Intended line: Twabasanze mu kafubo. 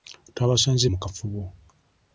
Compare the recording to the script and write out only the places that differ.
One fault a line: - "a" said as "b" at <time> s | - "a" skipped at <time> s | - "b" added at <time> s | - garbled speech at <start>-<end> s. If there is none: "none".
none